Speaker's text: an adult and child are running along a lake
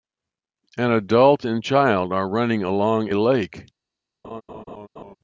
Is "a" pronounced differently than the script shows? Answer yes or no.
yes